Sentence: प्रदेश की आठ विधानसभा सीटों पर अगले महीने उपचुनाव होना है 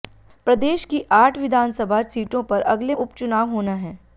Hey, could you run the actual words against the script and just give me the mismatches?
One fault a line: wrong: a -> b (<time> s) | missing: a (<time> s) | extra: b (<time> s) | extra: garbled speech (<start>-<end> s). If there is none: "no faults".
missing: महीने (2.9 s)